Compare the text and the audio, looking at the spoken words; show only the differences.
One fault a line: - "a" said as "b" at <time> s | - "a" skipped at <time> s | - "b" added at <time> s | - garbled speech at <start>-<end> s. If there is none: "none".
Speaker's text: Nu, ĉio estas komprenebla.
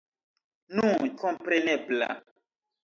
- "ĉio estas" skipped at 0.9 s